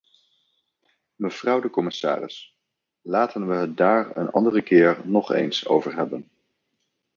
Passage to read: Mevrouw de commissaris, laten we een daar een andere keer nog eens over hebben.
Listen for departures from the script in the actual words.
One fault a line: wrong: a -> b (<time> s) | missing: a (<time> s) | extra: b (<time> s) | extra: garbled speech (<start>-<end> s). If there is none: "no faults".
wrong: een -> het (3.5 s)